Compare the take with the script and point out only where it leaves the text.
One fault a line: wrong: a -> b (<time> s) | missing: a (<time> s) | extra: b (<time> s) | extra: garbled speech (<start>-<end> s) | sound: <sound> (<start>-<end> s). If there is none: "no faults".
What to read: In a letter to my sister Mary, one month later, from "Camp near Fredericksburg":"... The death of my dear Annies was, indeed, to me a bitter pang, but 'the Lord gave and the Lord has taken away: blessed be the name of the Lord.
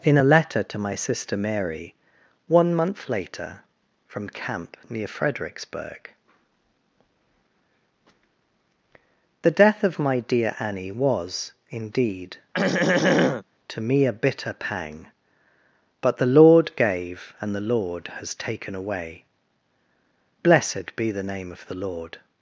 wrong: Annies -> Annie (10.6 s)
sound: throat clearing (12.5-13.4 s)